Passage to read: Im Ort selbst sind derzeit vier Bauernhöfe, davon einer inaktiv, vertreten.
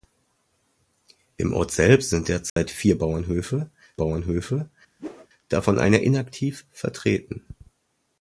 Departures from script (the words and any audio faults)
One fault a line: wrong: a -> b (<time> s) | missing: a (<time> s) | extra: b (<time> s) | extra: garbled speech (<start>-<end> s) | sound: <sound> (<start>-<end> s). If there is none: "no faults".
sound: dropout (2.5-2.6 s)
extra: Bauernhöfe (4.0 s)
sound: whoosh (5.0-5.3 s)